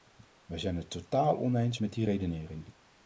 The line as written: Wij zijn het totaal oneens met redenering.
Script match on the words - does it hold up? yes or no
no